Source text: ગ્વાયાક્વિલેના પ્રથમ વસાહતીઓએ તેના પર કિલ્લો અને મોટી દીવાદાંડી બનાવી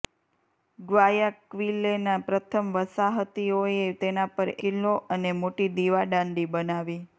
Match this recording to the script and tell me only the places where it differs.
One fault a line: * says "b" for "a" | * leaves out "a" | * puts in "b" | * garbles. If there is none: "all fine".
all fine